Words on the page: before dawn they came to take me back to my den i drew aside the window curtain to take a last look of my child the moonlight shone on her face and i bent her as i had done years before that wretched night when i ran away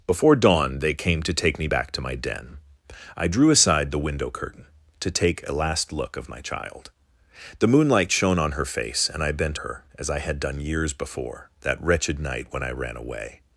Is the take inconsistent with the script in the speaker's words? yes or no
no